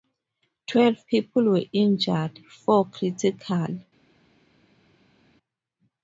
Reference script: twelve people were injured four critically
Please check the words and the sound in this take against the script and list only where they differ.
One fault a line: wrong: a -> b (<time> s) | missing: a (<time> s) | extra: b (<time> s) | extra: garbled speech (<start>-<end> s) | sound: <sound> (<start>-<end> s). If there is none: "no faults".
no faults